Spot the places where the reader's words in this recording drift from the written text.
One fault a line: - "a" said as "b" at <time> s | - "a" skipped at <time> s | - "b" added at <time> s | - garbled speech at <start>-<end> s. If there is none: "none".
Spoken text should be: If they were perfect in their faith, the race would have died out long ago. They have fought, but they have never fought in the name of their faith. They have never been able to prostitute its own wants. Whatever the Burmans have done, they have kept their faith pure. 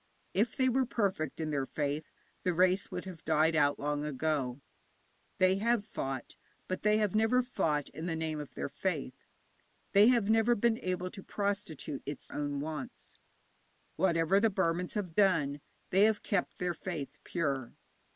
none